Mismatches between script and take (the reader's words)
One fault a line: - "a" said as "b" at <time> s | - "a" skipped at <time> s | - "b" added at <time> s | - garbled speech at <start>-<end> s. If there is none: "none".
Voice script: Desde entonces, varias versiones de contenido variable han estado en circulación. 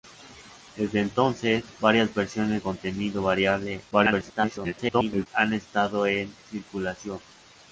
- "de" skipped at 2.6 s
- garbled speech at 3.9-5.3 s